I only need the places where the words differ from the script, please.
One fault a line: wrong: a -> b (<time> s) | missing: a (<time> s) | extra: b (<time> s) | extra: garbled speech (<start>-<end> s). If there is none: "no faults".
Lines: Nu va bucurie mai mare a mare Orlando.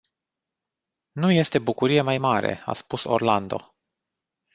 wrong: va -> este (1.3 s)
wrong: mare -> spus (2.7 s)